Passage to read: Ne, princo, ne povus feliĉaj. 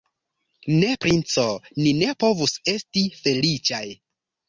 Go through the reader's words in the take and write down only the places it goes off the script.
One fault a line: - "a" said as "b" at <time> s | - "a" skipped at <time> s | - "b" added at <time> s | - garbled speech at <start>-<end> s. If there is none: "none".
- "ni" added at 1.8 s
- "esti" added at 2.7 s